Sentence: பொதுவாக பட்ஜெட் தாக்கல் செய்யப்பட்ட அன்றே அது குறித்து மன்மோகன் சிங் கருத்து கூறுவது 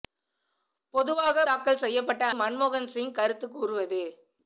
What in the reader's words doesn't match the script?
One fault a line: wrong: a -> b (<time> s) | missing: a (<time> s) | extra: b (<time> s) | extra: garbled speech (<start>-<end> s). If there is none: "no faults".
missing: பட்ஜெட் (1.4 s)
missing: அன்றே அது குறித்து (2.3 s)